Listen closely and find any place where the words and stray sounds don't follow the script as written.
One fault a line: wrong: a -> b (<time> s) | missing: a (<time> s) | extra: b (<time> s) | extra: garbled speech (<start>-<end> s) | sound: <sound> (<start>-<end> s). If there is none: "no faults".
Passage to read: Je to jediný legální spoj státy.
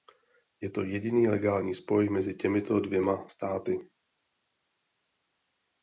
extra: mezi těmito dvěma (2.1 s)